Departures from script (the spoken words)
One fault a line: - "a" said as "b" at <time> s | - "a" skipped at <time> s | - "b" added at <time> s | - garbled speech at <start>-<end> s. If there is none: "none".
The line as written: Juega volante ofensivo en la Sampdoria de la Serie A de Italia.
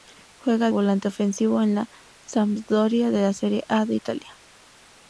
none